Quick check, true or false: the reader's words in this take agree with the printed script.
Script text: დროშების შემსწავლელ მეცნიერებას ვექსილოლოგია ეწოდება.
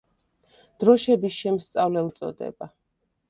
false